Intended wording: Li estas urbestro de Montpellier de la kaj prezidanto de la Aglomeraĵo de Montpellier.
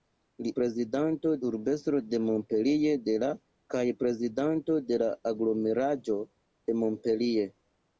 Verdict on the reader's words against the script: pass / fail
fail